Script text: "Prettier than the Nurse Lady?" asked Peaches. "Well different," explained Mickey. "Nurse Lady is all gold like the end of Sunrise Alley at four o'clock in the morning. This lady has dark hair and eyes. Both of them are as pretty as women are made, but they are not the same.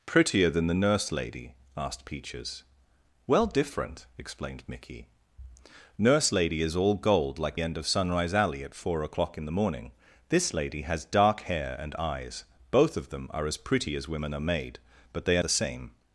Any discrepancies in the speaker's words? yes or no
yes